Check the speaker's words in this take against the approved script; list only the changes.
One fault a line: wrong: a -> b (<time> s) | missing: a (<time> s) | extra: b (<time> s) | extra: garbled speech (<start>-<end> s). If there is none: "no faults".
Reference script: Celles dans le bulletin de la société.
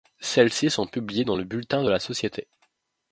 extra: ci sont publiées (0.5 s)